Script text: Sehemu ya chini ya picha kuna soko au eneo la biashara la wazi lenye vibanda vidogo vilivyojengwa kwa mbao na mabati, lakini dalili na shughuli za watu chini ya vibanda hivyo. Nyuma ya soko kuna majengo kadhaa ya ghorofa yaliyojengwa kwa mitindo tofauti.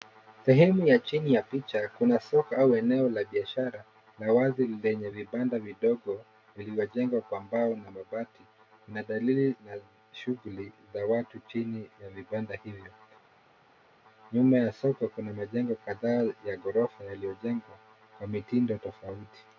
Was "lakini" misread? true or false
true